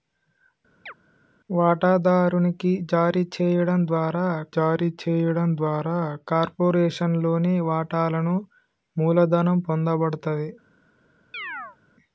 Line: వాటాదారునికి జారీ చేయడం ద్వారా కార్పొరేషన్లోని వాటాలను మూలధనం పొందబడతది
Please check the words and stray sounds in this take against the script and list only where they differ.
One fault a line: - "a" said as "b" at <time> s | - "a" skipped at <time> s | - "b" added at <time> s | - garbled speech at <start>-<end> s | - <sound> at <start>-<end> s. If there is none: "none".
- chirp at 0.9-0.9 s
- "జారీ చేయడం ద్వారా" added at 4.6 s
- chirp at 11.3-11.8 s